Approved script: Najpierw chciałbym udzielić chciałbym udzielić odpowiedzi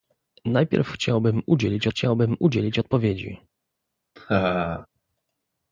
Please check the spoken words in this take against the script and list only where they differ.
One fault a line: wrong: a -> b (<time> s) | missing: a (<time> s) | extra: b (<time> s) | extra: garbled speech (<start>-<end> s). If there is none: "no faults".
no faults